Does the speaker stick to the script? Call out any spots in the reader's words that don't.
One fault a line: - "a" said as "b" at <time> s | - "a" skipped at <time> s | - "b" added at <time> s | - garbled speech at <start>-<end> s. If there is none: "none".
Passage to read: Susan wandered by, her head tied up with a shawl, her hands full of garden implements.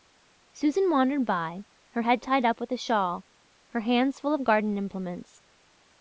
none